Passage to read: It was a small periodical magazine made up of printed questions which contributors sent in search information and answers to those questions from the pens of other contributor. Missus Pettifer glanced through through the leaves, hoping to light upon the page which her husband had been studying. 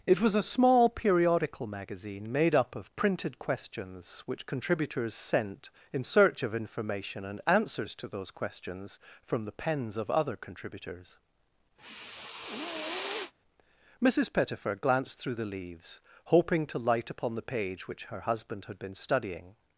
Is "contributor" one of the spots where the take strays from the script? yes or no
yes